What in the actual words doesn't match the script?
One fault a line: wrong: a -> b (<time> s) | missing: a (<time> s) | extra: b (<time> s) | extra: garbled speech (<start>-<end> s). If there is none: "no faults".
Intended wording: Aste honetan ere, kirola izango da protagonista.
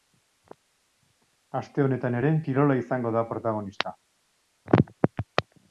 no faults